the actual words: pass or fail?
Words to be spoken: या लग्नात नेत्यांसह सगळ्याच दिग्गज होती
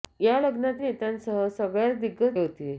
pass